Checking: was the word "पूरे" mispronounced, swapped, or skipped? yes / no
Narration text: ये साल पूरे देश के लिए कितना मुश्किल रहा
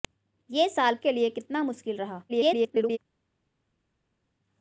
yes